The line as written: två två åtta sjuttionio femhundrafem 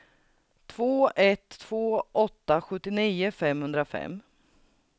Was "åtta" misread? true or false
false